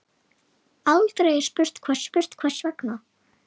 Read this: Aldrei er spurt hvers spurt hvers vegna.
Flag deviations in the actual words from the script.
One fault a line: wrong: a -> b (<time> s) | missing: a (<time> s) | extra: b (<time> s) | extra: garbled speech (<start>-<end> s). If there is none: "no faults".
no faults